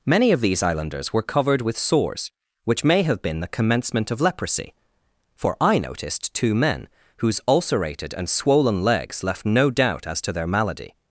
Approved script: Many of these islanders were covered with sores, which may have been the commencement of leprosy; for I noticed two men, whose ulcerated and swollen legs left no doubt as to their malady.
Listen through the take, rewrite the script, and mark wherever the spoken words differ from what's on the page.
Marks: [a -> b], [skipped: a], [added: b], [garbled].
Many of these islanders were covered with sores, which may have been the commencement of leprosy; for I noticed two men, whose ulcerated and swollen legs left no doubt as to their malady.